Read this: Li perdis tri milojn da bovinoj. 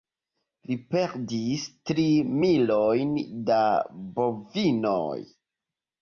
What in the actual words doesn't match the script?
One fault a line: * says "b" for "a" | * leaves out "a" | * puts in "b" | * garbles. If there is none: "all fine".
all fine